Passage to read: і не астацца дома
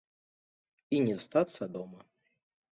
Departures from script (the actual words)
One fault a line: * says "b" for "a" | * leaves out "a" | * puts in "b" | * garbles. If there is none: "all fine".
all fine